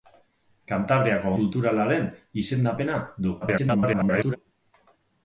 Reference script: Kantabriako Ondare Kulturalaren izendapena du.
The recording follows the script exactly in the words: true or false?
false